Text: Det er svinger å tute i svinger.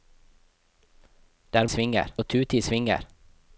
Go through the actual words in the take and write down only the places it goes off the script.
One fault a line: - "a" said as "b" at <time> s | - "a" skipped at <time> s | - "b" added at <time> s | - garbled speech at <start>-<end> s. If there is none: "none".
none